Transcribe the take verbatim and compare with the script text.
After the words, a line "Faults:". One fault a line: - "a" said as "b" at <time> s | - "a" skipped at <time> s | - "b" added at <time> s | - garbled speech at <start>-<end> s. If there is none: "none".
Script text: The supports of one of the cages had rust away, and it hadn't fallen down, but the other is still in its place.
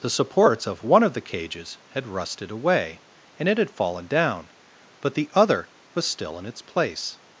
The supports of one of the cages had rusted away, and it had fallen down, but the other was still in its place.
Faults:
- "rust" said as "rusted" at 2.1 s
- "hadn't" said as "had" at 3.6 s
- "is" said as "was" at 5.9 s